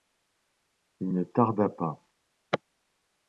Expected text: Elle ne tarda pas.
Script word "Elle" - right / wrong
wrong